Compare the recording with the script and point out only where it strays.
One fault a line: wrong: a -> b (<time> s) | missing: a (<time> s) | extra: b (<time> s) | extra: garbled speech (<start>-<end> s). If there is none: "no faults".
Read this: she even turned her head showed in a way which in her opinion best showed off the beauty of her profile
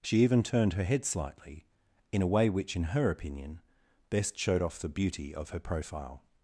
wrong: showed -> slightly (1.1 s)